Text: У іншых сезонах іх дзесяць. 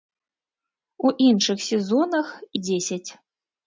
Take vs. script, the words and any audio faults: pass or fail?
fail